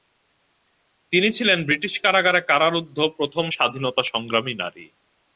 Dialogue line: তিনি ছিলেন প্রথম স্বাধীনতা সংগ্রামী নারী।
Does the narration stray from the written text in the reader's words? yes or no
yes